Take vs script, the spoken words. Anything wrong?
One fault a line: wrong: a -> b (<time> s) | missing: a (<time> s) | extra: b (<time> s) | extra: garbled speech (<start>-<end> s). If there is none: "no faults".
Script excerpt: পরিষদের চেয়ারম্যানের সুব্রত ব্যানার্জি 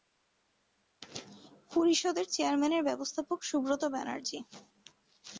extra: ব্যবস্থাপক (2.8 s)